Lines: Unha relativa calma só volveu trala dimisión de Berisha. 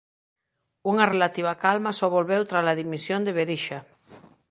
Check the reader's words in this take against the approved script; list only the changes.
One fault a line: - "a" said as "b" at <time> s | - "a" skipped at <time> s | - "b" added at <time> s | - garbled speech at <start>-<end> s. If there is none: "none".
none